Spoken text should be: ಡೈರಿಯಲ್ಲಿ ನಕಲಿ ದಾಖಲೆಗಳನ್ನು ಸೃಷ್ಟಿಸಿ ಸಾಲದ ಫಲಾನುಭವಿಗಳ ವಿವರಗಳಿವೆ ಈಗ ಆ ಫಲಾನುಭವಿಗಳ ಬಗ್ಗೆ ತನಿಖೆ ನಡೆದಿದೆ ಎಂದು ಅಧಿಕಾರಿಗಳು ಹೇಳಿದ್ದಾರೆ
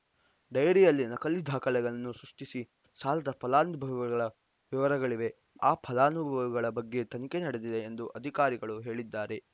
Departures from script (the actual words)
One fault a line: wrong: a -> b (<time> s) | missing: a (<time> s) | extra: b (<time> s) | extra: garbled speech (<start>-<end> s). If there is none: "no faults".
missing: ಈಗ (5.3 s)